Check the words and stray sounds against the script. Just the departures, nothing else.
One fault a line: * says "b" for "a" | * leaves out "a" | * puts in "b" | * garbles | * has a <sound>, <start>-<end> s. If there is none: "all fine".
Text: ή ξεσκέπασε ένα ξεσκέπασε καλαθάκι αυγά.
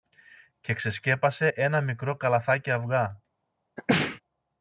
* says "και" for "ή"
* says "μικρό" for "ξεσκέπασε"
* has a sneeze, 3.8-4.2 s